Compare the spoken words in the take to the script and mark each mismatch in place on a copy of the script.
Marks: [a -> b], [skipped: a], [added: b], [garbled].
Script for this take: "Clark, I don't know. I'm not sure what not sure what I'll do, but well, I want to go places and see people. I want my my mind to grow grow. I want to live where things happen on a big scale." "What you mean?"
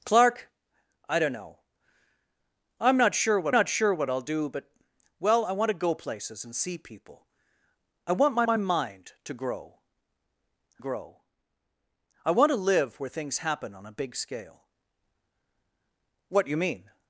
"Clark, I don't know. I'm not sure what not sure what I'll do, but well, I want to go places and see people. I want my my mind to grow grow. I want to live where things happen on a big scale." "What you mean?"